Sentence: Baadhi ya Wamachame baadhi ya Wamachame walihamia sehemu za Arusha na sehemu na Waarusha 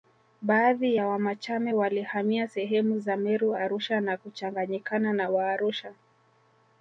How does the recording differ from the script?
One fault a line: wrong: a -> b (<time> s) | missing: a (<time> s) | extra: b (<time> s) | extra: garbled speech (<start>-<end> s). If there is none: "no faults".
missing: baadhi ya Wamachame (1.7 s)
extra: Meru (3.2 s)
wrong: sehemu -> kuchanganyikana (4.2 s)